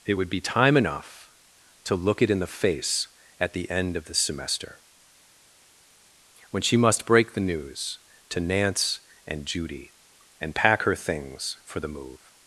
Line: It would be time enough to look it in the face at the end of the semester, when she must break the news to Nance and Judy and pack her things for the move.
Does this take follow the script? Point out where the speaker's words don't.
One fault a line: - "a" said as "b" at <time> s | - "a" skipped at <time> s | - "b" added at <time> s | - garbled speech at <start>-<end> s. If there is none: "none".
none